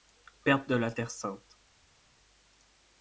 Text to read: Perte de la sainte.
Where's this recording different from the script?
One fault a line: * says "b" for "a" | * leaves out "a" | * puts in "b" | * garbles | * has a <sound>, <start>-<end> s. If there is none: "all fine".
* puts in "terre"